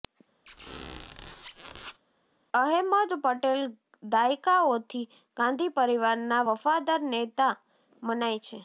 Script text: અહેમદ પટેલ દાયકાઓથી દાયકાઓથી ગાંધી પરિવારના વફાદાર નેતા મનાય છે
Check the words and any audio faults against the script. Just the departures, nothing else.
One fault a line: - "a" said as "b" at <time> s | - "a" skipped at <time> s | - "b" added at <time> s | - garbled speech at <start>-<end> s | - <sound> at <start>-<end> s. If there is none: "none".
- squeak at 0.5-2.0 s
- "દાયકાઓથી" skipped at 5.0 s